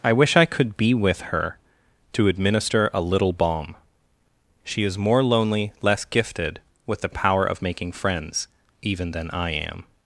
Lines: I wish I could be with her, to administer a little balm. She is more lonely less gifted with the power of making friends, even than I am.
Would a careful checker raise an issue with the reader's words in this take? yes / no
no